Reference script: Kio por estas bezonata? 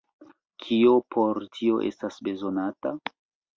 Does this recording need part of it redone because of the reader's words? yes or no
yes